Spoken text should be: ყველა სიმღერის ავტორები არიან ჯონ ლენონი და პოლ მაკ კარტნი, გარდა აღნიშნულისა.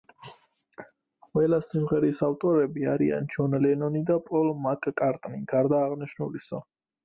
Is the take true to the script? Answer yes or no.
yes